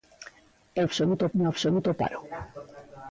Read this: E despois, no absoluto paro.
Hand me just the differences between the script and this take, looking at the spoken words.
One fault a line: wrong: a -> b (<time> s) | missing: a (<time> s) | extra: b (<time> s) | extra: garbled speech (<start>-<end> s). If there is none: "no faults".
wrong: despois -> absoluto (0.9 s)